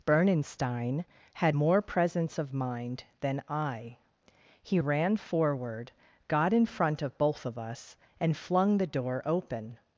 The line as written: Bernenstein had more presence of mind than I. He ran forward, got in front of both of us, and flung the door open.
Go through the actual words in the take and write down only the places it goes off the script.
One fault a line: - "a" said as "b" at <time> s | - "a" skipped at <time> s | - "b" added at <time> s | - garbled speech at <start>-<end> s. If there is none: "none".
none